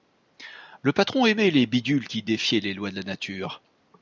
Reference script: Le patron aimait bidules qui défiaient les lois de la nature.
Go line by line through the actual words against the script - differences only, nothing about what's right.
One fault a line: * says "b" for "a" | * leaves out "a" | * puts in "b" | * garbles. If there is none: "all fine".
* puts in "les"